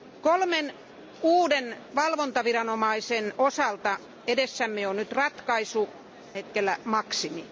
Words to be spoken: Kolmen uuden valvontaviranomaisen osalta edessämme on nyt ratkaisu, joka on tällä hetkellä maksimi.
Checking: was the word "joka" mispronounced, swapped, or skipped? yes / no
yes